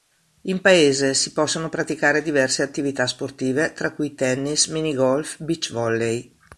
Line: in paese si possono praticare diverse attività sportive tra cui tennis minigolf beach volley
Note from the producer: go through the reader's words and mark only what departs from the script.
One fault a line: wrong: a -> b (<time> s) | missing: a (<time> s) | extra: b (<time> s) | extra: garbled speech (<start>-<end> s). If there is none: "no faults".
no faults